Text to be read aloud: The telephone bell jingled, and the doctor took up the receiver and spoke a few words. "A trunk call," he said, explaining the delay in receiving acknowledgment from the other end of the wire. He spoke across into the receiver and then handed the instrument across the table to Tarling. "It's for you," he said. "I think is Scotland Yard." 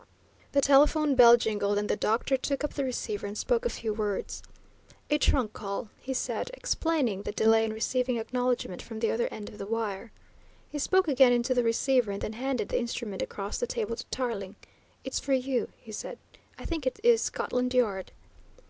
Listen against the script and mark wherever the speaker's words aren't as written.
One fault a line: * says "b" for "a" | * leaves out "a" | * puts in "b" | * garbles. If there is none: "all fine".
* says "again" for "across"
* puts in "it"